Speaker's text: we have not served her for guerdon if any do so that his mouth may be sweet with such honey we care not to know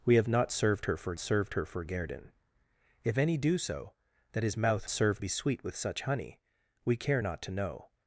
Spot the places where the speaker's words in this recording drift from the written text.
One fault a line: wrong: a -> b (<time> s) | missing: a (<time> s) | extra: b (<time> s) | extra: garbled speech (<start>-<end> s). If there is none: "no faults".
extra: served her for (1.2 s)
wrong: may -> served (4.9 s)